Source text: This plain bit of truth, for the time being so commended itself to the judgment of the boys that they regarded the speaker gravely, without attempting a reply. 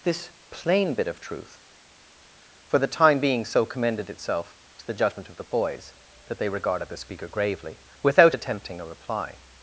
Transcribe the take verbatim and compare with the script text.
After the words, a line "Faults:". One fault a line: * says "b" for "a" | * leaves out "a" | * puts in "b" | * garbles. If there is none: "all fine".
This plain bit of truth, for the time being so commended itself to the judgment of the boys that they regarded the speaker gravely, without attempting a reply.
Faults:
all fine